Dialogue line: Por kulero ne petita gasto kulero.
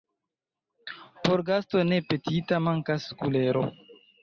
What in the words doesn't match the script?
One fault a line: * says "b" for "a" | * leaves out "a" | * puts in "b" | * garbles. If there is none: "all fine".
* says "gasto" for "kulero"
* says "mankas" for "gasto"